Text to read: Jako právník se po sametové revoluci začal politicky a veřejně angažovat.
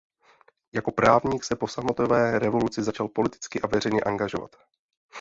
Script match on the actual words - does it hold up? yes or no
yes